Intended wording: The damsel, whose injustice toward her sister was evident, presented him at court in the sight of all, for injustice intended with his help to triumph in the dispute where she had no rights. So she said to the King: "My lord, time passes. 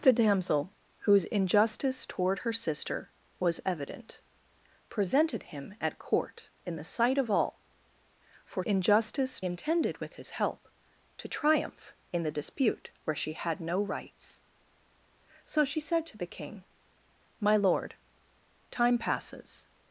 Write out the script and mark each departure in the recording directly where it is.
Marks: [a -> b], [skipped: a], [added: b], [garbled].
The damsel, whose injustice toward her sister was evident, presented him at court in the sight of all, for injustice intended with his help to triumph in the dispute where she had no rights. So she said to the King: "My lord, time passes.